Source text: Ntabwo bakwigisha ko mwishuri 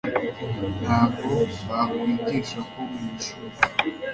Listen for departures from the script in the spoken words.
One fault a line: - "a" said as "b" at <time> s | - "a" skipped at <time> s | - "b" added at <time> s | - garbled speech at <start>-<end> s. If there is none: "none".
none